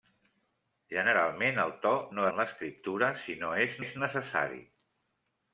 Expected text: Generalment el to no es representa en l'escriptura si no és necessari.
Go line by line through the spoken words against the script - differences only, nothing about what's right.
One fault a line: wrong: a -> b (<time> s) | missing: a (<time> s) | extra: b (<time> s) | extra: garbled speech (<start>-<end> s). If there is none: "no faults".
missing: es representa (2.3 s)
extra: és (3.8 s)